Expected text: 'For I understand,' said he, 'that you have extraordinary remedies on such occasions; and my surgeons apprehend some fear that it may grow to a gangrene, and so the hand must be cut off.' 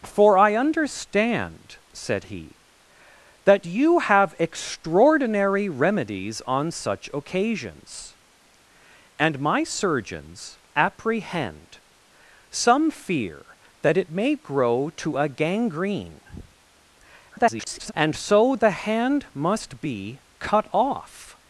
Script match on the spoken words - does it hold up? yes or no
no